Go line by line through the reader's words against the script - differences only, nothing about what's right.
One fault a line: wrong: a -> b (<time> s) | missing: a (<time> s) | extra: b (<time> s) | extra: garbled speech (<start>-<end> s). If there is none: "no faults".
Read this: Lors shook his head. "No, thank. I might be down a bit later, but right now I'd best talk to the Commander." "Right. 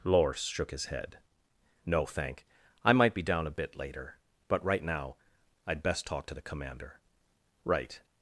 no faults